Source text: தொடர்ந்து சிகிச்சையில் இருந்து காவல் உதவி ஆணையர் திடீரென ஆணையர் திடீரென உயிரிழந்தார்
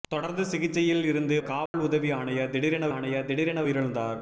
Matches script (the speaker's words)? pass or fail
pass